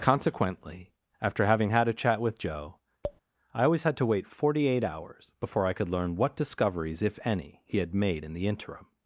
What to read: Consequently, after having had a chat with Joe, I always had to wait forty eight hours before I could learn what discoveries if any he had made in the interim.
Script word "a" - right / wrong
right